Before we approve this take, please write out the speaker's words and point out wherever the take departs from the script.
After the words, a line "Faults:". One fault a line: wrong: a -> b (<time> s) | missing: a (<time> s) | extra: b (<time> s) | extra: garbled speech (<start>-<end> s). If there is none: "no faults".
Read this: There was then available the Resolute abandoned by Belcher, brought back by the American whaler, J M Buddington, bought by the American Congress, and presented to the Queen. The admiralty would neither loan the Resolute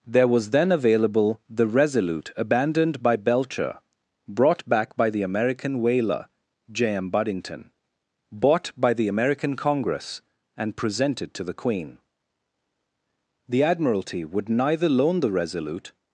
There was then available the Resolute abandoned by Belcher, brought back by the American whaler, J M Buddington, bought by the American Congress, and presented to the Queen. The admiralty would neither loan the Resolute
Faults:
no faults